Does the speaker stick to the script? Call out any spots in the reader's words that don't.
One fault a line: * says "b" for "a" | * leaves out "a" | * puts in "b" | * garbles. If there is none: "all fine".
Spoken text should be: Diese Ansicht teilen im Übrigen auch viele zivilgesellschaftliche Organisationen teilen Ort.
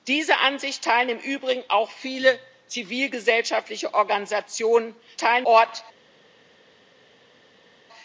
all fine